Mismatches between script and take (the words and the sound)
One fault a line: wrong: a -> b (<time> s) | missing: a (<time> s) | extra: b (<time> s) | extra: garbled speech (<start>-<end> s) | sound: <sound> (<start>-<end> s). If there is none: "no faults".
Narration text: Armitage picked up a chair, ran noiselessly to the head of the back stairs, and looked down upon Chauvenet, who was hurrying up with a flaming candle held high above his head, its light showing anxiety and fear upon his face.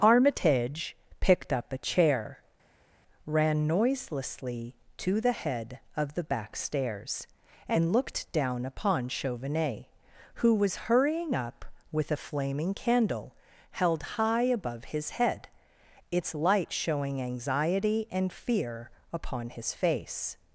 no faults